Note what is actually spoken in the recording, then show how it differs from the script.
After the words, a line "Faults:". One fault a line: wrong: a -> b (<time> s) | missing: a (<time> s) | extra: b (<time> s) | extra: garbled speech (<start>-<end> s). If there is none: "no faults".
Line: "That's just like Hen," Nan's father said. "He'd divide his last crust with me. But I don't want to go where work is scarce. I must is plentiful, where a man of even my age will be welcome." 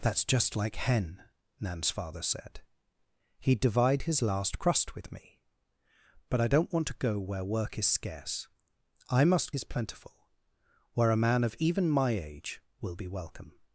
"That's just like Hen," Nan's father said. "He'd divide his last crust with me. But I don't want to go where work is scarce. I must is plentiful, where a man of even my age will be welcome."
Faults:
no faults